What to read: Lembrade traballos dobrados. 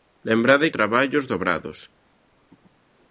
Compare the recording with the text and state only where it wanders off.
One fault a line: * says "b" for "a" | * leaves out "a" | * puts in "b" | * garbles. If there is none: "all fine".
all fine